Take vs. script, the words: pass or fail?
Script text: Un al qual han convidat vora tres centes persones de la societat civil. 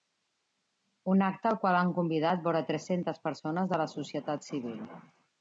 fail